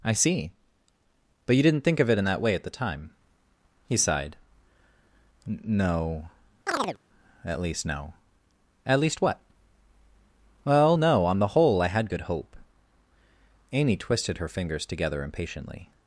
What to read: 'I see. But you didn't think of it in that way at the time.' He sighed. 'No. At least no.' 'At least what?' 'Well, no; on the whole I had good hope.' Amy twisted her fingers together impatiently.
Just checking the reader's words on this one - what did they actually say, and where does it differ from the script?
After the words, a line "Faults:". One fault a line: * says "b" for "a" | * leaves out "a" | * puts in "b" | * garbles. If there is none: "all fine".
'I see. But you didn't think of it in that way at the time.' He sighed. 'No. At least no.' 'At least what?' 'Well, no; on the whole I had good hope.' Amy twisted her fingers together impatiently.
Faults:
all fine